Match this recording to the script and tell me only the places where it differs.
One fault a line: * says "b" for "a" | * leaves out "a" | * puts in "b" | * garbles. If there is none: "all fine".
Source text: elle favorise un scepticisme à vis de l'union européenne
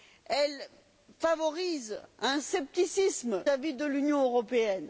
all fine